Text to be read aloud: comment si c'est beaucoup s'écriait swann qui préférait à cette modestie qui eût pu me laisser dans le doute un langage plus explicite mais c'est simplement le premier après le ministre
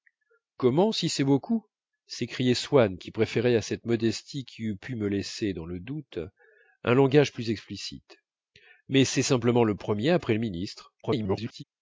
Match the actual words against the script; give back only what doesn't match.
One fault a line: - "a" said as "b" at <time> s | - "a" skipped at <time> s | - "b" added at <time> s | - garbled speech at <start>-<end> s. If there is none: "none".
- garbled speech at 11.0-11.6 s